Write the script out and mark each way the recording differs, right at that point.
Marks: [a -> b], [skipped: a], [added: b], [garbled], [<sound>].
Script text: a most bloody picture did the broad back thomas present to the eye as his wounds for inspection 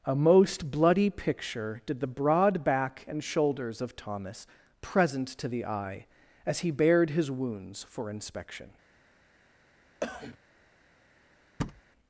a most bloody picture did the broad back [added: and shoulders of] thomas present to the eye as [added: he bared] his wounds for inspection [cough] [thud]